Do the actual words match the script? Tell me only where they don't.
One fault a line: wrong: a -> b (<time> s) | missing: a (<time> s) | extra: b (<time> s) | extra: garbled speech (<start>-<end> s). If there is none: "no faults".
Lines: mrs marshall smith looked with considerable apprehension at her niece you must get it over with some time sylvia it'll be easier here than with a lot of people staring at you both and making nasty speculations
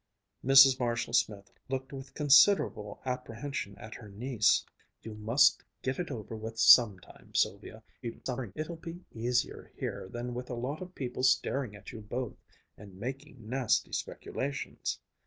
extra: garbled speech (8.0-8.5 s)